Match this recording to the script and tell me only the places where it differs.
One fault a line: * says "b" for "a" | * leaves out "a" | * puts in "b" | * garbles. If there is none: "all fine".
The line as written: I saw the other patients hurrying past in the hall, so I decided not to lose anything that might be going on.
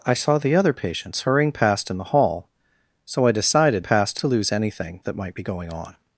* says "past" for "not"